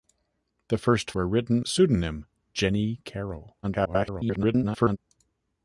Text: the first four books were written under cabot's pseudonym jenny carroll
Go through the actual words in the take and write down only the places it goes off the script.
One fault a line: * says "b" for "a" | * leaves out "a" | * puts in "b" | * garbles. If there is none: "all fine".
* leaves out "four books"
* leaves out "under cabot's"
* garbles